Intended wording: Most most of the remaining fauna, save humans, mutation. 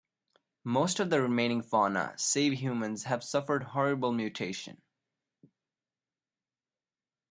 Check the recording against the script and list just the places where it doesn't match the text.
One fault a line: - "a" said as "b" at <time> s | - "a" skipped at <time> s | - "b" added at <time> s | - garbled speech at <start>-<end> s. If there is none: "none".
- "most" skipped at 1.0 s
- "have suffered horrible" added at 3.0 s